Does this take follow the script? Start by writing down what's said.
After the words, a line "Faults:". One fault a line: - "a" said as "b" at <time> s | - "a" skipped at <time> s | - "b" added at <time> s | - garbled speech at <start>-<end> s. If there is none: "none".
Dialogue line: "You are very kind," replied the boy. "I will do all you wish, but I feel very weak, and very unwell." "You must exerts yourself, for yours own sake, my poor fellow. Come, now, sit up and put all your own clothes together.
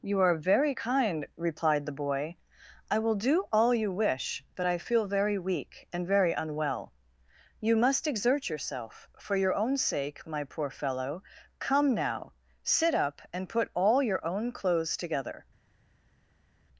"You are very kind," replied the boy. "I will do all you wish, but I feel very weak, and very unwell." "You must exert yourself, for your own sake, my poor fellow. Come, now, sit up and put all your own clothes together.
Faults:
- "exerts" said as "exert" at 8.1 s
- "yours" said as "your" at 9.3 s